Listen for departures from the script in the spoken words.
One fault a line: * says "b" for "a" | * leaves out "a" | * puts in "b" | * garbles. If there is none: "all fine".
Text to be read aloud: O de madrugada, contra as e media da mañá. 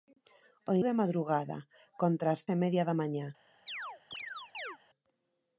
all fine